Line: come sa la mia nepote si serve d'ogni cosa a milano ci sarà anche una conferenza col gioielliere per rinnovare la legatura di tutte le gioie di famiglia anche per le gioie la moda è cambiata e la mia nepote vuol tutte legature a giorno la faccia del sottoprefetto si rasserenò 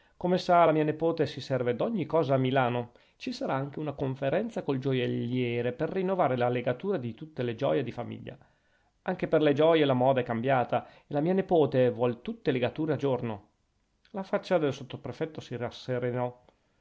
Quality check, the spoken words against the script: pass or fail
pass